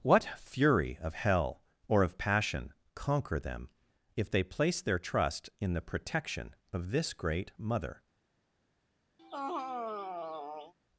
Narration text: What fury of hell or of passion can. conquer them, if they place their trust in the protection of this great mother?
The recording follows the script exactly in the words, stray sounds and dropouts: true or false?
false